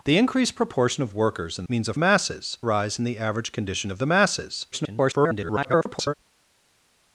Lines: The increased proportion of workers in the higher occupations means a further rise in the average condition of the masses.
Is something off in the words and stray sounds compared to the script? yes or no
yes